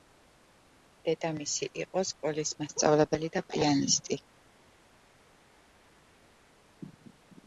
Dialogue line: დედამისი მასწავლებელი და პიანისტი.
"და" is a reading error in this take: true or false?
false